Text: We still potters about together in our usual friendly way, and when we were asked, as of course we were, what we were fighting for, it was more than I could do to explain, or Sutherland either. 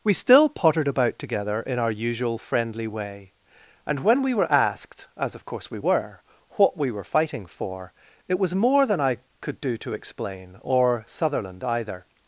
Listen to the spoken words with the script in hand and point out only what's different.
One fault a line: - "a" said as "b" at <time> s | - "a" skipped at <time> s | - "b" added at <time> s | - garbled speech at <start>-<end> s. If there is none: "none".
- "potters" said as "pottered" at 0.5 s